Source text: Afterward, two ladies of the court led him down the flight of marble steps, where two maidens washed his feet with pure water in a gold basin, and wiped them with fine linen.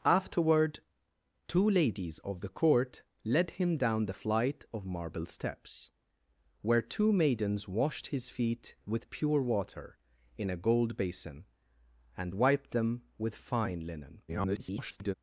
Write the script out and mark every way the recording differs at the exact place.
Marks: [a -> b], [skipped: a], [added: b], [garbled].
Afterward, two ladies of the court led him down the flight of marble steps, where two maidens washed his feet with pure water in a gold basin, and wiped them with fine linen. [garbled]